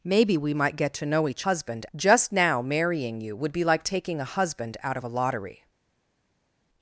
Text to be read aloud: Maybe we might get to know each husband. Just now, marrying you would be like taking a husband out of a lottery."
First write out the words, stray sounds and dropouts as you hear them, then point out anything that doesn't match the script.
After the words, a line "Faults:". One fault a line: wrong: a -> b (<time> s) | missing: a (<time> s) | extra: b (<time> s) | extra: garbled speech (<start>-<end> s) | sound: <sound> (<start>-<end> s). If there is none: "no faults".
Maybe we might get to know each husband. Just now, marrying you would be like taking a husband out of a lottery."
Faults:
no faults